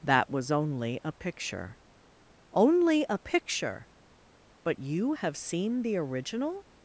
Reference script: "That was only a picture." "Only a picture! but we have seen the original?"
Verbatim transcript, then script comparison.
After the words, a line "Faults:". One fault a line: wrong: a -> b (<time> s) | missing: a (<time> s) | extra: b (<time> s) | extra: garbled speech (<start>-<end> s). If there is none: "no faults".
"That was only a picture." "Only a picture! but you have seen the original?"
Faults:
wrong: we -> you (4.8 s)